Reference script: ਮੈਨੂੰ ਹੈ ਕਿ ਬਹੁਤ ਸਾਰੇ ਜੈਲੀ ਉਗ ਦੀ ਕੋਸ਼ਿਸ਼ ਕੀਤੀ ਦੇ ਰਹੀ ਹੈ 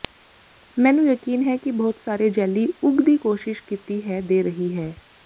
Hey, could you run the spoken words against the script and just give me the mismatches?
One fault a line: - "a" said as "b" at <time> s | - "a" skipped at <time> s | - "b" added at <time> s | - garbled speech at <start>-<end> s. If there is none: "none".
- "ਯਕੀਨ" added at 1.1 s
- "ਹੈ" added at 4.1 s